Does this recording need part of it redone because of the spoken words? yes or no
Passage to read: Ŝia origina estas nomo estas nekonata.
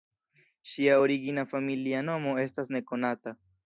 yes